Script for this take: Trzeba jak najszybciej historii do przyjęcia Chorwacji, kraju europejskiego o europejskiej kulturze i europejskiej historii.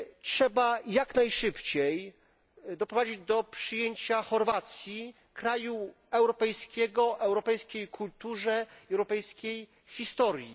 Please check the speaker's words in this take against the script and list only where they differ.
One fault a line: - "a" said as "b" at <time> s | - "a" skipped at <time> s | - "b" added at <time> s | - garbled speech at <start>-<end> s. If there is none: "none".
- "historii" said as "doprowadzić" at 2.8 s